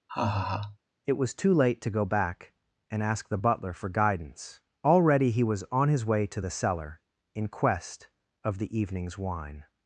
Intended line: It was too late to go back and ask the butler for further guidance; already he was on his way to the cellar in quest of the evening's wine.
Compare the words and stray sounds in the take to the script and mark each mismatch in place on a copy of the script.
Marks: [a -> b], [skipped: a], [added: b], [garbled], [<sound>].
[laugh] It was too late to go back and ask the butler for [skipped: further] guidance; already he was on his way to the cellar in quest of the evening's wine.